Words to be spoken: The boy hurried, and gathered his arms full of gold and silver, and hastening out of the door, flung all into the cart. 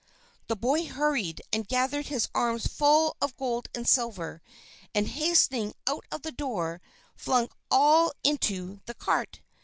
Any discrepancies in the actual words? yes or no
no